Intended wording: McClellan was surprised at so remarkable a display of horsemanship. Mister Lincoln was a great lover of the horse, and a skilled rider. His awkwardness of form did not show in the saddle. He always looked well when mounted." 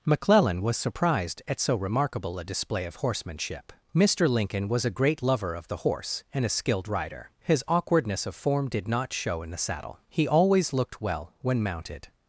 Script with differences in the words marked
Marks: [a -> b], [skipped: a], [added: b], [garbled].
McClellan was surprised at so remarkable a display of horsemanship. Mister Lincoln was a great lover of the horse, and a skilled rider. His awkwardness of form did not show in the saddle. He always looked well when mounted."